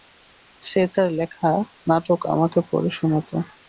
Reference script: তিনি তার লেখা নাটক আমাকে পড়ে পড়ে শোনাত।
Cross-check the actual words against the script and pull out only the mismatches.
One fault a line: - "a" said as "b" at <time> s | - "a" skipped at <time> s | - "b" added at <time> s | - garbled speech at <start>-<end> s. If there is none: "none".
- "তিনি" said as "সে" at 0.6 s
- "পড়ে" skipped at 2.9 s